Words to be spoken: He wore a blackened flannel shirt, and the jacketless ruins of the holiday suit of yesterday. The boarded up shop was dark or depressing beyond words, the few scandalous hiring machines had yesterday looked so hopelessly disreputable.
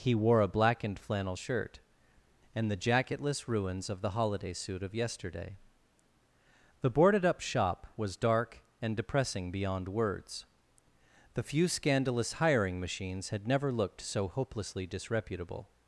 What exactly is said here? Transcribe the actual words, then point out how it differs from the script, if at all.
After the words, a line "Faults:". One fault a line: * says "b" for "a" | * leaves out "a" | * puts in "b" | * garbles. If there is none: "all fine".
He wore a blackened flannel shirt, and the jacketless ruins of the holiday suit of yesterday. The boarded up shop was dark and depressing beyond words, the few scandalous hiring machines had never looked so hopelessly disreputable.
Faults:
* says "and" for "or"
* says "never" for "yesterday"